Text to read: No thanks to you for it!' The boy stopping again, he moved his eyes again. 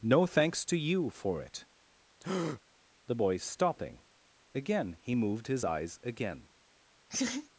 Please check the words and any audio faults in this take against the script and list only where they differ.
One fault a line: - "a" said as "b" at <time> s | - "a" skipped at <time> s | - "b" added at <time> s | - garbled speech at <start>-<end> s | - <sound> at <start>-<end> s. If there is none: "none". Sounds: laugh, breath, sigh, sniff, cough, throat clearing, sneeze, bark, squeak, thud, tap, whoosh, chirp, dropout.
- breath at 2.2-2.6 s
- laugh at 7.1-7.5 s